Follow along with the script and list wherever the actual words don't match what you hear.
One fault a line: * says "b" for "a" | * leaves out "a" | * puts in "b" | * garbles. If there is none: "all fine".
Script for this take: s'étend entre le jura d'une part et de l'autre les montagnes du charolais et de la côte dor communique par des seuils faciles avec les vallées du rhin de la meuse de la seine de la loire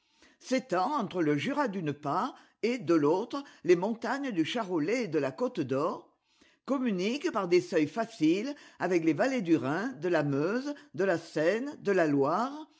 all fine